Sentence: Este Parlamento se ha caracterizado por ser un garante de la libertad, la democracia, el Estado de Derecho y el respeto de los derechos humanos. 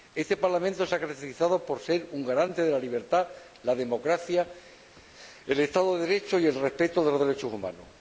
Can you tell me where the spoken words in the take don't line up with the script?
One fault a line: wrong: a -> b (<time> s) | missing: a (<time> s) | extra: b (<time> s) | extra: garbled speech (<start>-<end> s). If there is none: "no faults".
no faults